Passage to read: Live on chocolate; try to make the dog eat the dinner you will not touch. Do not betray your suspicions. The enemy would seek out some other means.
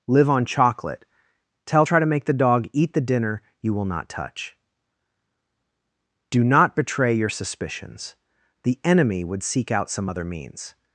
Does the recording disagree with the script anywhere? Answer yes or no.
yes